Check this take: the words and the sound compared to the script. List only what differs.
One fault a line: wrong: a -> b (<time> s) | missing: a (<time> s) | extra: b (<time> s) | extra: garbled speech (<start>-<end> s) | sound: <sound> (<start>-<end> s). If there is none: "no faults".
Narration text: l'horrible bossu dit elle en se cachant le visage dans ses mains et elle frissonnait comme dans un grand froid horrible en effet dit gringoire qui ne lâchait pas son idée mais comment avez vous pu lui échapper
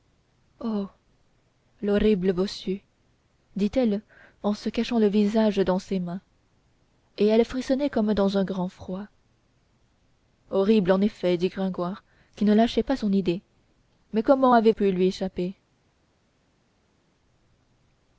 missing: vous (14.7 s)